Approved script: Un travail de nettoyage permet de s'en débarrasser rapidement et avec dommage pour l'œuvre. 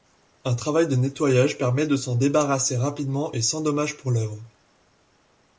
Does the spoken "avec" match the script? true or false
false